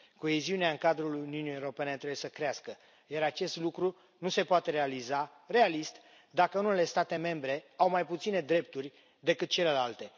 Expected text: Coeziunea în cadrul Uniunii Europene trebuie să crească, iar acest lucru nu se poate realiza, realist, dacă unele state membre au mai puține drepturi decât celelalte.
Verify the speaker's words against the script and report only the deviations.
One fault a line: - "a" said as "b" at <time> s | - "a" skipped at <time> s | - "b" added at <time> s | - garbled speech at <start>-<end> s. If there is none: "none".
none